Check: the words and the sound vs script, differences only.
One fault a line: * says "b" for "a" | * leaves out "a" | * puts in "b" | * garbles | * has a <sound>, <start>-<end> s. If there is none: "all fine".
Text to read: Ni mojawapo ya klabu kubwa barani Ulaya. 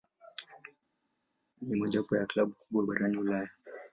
all fine